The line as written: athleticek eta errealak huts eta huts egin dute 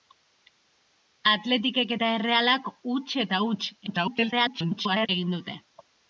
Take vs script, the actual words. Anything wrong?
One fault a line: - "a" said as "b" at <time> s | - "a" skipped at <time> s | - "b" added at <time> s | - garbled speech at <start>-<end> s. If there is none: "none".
- garbled speech at 3.9-5.1 s